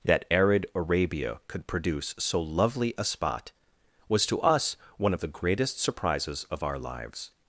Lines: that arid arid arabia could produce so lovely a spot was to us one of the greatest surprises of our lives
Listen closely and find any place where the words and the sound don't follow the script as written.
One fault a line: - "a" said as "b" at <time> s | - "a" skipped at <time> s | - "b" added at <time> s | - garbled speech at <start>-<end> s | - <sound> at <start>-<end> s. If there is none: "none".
- "arid" skipped at 0.7 s